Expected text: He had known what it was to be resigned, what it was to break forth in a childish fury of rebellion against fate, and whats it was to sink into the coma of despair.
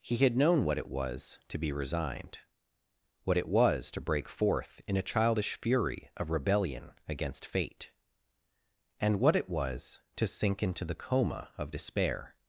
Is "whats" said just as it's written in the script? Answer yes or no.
no